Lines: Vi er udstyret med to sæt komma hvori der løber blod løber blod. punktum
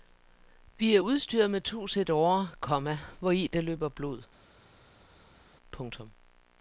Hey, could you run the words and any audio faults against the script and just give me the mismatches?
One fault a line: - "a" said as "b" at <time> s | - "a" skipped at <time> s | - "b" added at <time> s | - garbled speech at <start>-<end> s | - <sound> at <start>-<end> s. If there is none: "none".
- "årer" added at 2.1 s
- "løber blod" skipped at 4.2 s